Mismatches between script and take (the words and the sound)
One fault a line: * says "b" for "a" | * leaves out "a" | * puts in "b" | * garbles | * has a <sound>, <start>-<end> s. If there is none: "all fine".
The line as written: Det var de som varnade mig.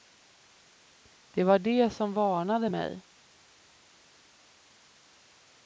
all fine